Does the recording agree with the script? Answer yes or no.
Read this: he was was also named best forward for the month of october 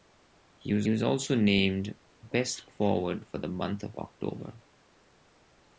yes